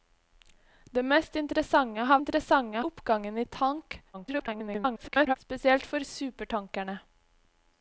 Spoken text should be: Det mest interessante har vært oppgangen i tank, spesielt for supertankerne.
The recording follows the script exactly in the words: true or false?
false